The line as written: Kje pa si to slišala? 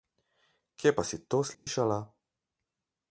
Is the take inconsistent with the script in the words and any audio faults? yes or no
yes